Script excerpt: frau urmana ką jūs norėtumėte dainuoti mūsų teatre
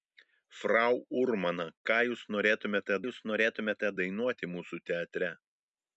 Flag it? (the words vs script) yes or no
yes